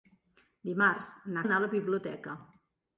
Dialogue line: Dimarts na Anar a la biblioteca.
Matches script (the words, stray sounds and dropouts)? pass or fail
pass